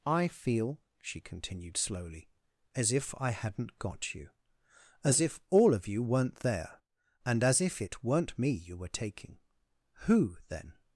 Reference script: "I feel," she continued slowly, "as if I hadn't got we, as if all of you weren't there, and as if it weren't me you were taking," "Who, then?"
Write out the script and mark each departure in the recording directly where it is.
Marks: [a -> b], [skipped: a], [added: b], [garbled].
"I feel," she continued slowly, "as if I hadn't got [we, -> you] as if all of you weren't there, and as if it weren't me you were taking," "Who, then?"